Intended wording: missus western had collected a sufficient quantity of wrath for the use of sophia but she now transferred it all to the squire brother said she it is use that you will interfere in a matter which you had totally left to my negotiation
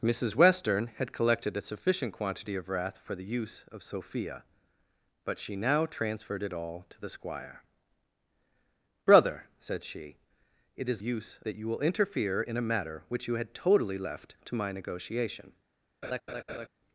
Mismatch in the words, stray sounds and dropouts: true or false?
true